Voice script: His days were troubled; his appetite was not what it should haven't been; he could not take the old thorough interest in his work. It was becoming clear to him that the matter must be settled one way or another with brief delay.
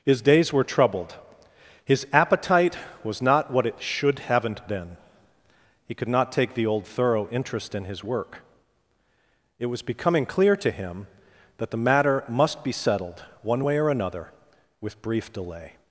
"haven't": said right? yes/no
yes